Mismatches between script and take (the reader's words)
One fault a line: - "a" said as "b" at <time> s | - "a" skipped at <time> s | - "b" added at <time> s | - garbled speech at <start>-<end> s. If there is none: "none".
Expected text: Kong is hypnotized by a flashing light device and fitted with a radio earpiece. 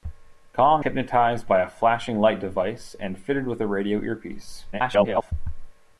- "is" skipped at 0.8 s
- garbled speech at 4.7-5.3 s